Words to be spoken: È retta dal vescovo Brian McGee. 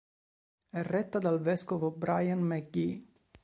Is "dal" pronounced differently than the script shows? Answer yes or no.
no